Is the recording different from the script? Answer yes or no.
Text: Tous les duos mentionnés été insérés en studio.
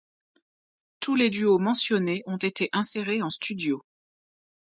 yes